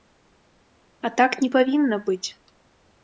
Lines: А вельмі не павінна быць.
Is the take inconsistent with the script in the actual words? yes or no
yes